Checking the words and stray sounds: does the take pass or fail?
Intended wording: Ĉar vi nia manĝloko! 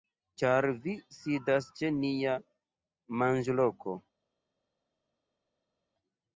fail